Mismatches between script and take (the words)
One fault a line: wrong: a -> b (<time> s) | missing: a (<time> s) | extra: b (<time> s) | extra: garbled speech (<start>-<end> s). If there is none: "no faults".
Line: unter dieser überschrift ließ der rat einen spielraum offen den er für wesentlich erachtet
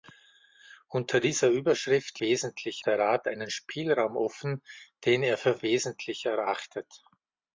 wrong: ließ -> wesentlich (2.2 s)